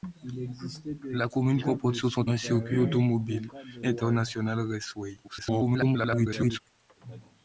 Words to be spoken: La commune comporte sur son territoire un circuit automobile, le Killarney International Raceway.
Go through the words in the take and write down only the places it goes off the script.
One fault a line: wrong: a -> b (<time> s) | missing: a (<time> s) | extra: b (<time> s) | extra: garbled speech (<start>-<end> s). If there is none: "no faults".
missing: territoire (2.2 s)
missing: le Killarney (3.5 s)
extra: garbled speech (5.2-6.6 s)